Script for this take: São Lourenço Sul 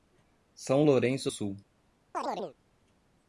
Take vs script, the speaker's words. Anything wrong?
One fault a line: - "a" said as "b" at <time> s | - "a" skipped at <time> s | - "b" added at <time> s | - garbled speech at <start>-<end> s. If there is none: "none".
none